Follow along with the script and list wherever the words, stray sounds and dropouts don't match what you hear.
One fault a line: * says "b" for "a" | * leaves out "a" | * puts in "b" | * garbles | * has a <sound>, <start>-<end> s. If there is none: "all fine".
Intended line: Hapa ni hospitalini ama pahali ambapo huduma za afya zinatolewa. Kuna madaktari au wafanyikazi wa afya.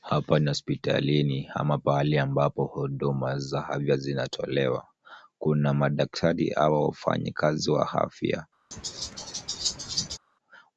* has a laugh, 8.7-10.2 s